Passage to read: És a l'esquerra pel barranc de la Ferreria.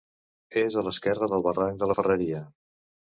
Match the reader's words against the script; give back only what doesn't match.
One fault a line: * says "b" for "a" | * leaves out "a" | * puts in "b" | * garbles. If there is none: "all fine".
* says "del" for "pel"